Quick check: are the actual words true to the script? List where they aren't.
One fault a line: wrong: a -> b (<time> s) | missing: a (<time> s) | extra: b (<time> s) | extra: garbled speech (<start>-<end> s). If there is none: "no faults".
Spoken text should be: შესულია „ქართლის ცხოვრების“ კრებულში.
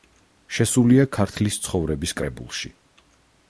no faults